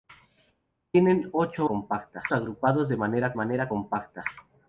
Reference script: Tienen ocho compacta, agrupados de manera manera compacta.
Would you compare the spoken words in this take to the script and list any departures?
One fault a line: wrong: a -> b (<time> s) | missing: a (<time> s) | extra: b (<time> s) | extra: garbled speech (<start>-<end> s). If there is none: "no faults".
no faults